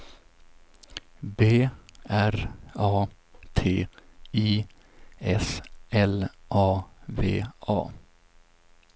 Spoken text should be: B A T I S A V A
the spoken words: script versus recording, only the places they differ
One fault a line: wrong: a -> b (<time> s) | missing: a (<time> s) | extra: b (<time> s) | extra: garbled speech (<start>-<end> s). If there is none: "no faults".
extra: R (2.1 s)
extra: L (5.9 s)